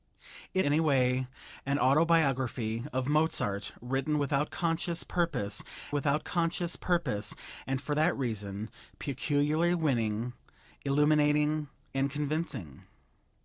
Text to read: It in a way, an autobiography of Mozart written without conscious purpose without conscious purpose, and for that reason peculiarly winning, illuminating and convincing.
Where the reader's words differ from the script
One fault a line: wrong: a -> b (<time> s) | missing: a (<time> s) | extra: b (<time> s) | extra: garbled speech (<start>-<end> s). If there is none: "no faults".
no faults